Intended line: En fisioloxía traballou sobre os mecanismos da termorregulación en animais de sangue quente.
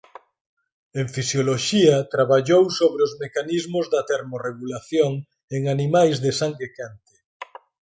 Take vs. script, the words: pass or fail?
pass